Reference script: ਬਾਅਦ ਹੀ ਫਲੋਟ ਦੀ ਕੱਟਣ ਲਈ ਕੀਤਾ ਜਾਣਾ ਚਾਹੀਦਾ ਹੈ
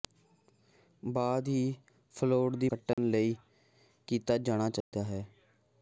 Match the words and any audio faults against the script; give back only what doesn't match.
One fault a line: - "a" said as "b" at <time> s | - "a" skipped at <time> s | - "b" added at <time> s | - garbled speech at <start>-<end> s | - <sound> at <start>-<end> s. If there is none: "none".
- dropout at 2.9-3.0 s
- dropout at 4.8-4.9 s